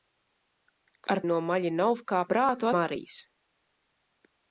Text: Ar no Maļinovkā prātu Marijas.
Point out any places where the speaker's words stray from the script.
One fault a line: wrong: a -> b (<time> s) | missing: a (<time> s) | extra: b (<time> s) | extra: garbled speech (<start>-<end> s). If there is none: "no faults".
no faults